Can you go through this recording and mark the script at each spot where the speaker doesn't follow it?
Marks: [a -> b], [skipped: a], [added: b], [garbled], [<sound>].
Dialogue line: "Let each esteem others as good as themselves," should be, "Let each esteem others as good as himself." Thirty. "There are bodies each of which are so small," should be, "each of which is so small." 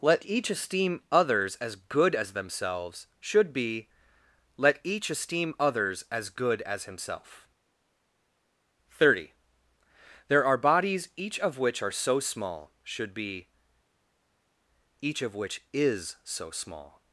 "Let each esteem others as good as themselves," should be, "Let each esteem others as good as himself." Thirty. "There are bodies each of which are so small," should be, "each of which is so small."